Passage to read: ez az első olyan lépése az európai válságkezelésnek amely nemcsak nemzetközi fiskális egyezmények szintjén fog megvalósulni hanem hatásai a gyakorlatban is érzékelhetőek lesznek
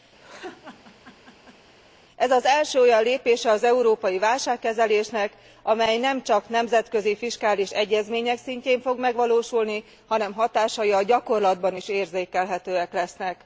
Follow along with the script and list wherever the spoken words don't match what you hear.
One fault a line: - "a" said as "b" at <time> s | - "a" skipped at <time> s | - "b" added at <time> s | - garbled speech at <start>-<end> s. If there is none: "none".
none